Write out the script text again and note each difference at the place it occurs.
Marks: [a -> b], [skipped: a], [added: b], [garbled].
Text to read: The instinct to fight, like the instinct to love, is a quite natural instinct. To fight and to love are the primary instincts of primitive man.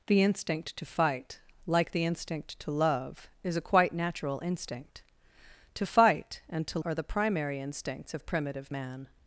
The instinct to fight, like the instinct to love, is a quite natural instinct. To fight and to [skipped: love] are the primary instincts of primitive man.